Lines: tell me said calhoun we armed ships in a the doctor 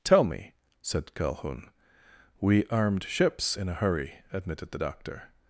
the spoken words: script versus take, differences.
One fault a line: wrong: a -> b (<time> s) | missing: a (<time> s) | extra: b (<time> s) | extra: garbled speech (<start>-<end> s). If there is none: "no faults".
extra: hurry admitted (3.7 s)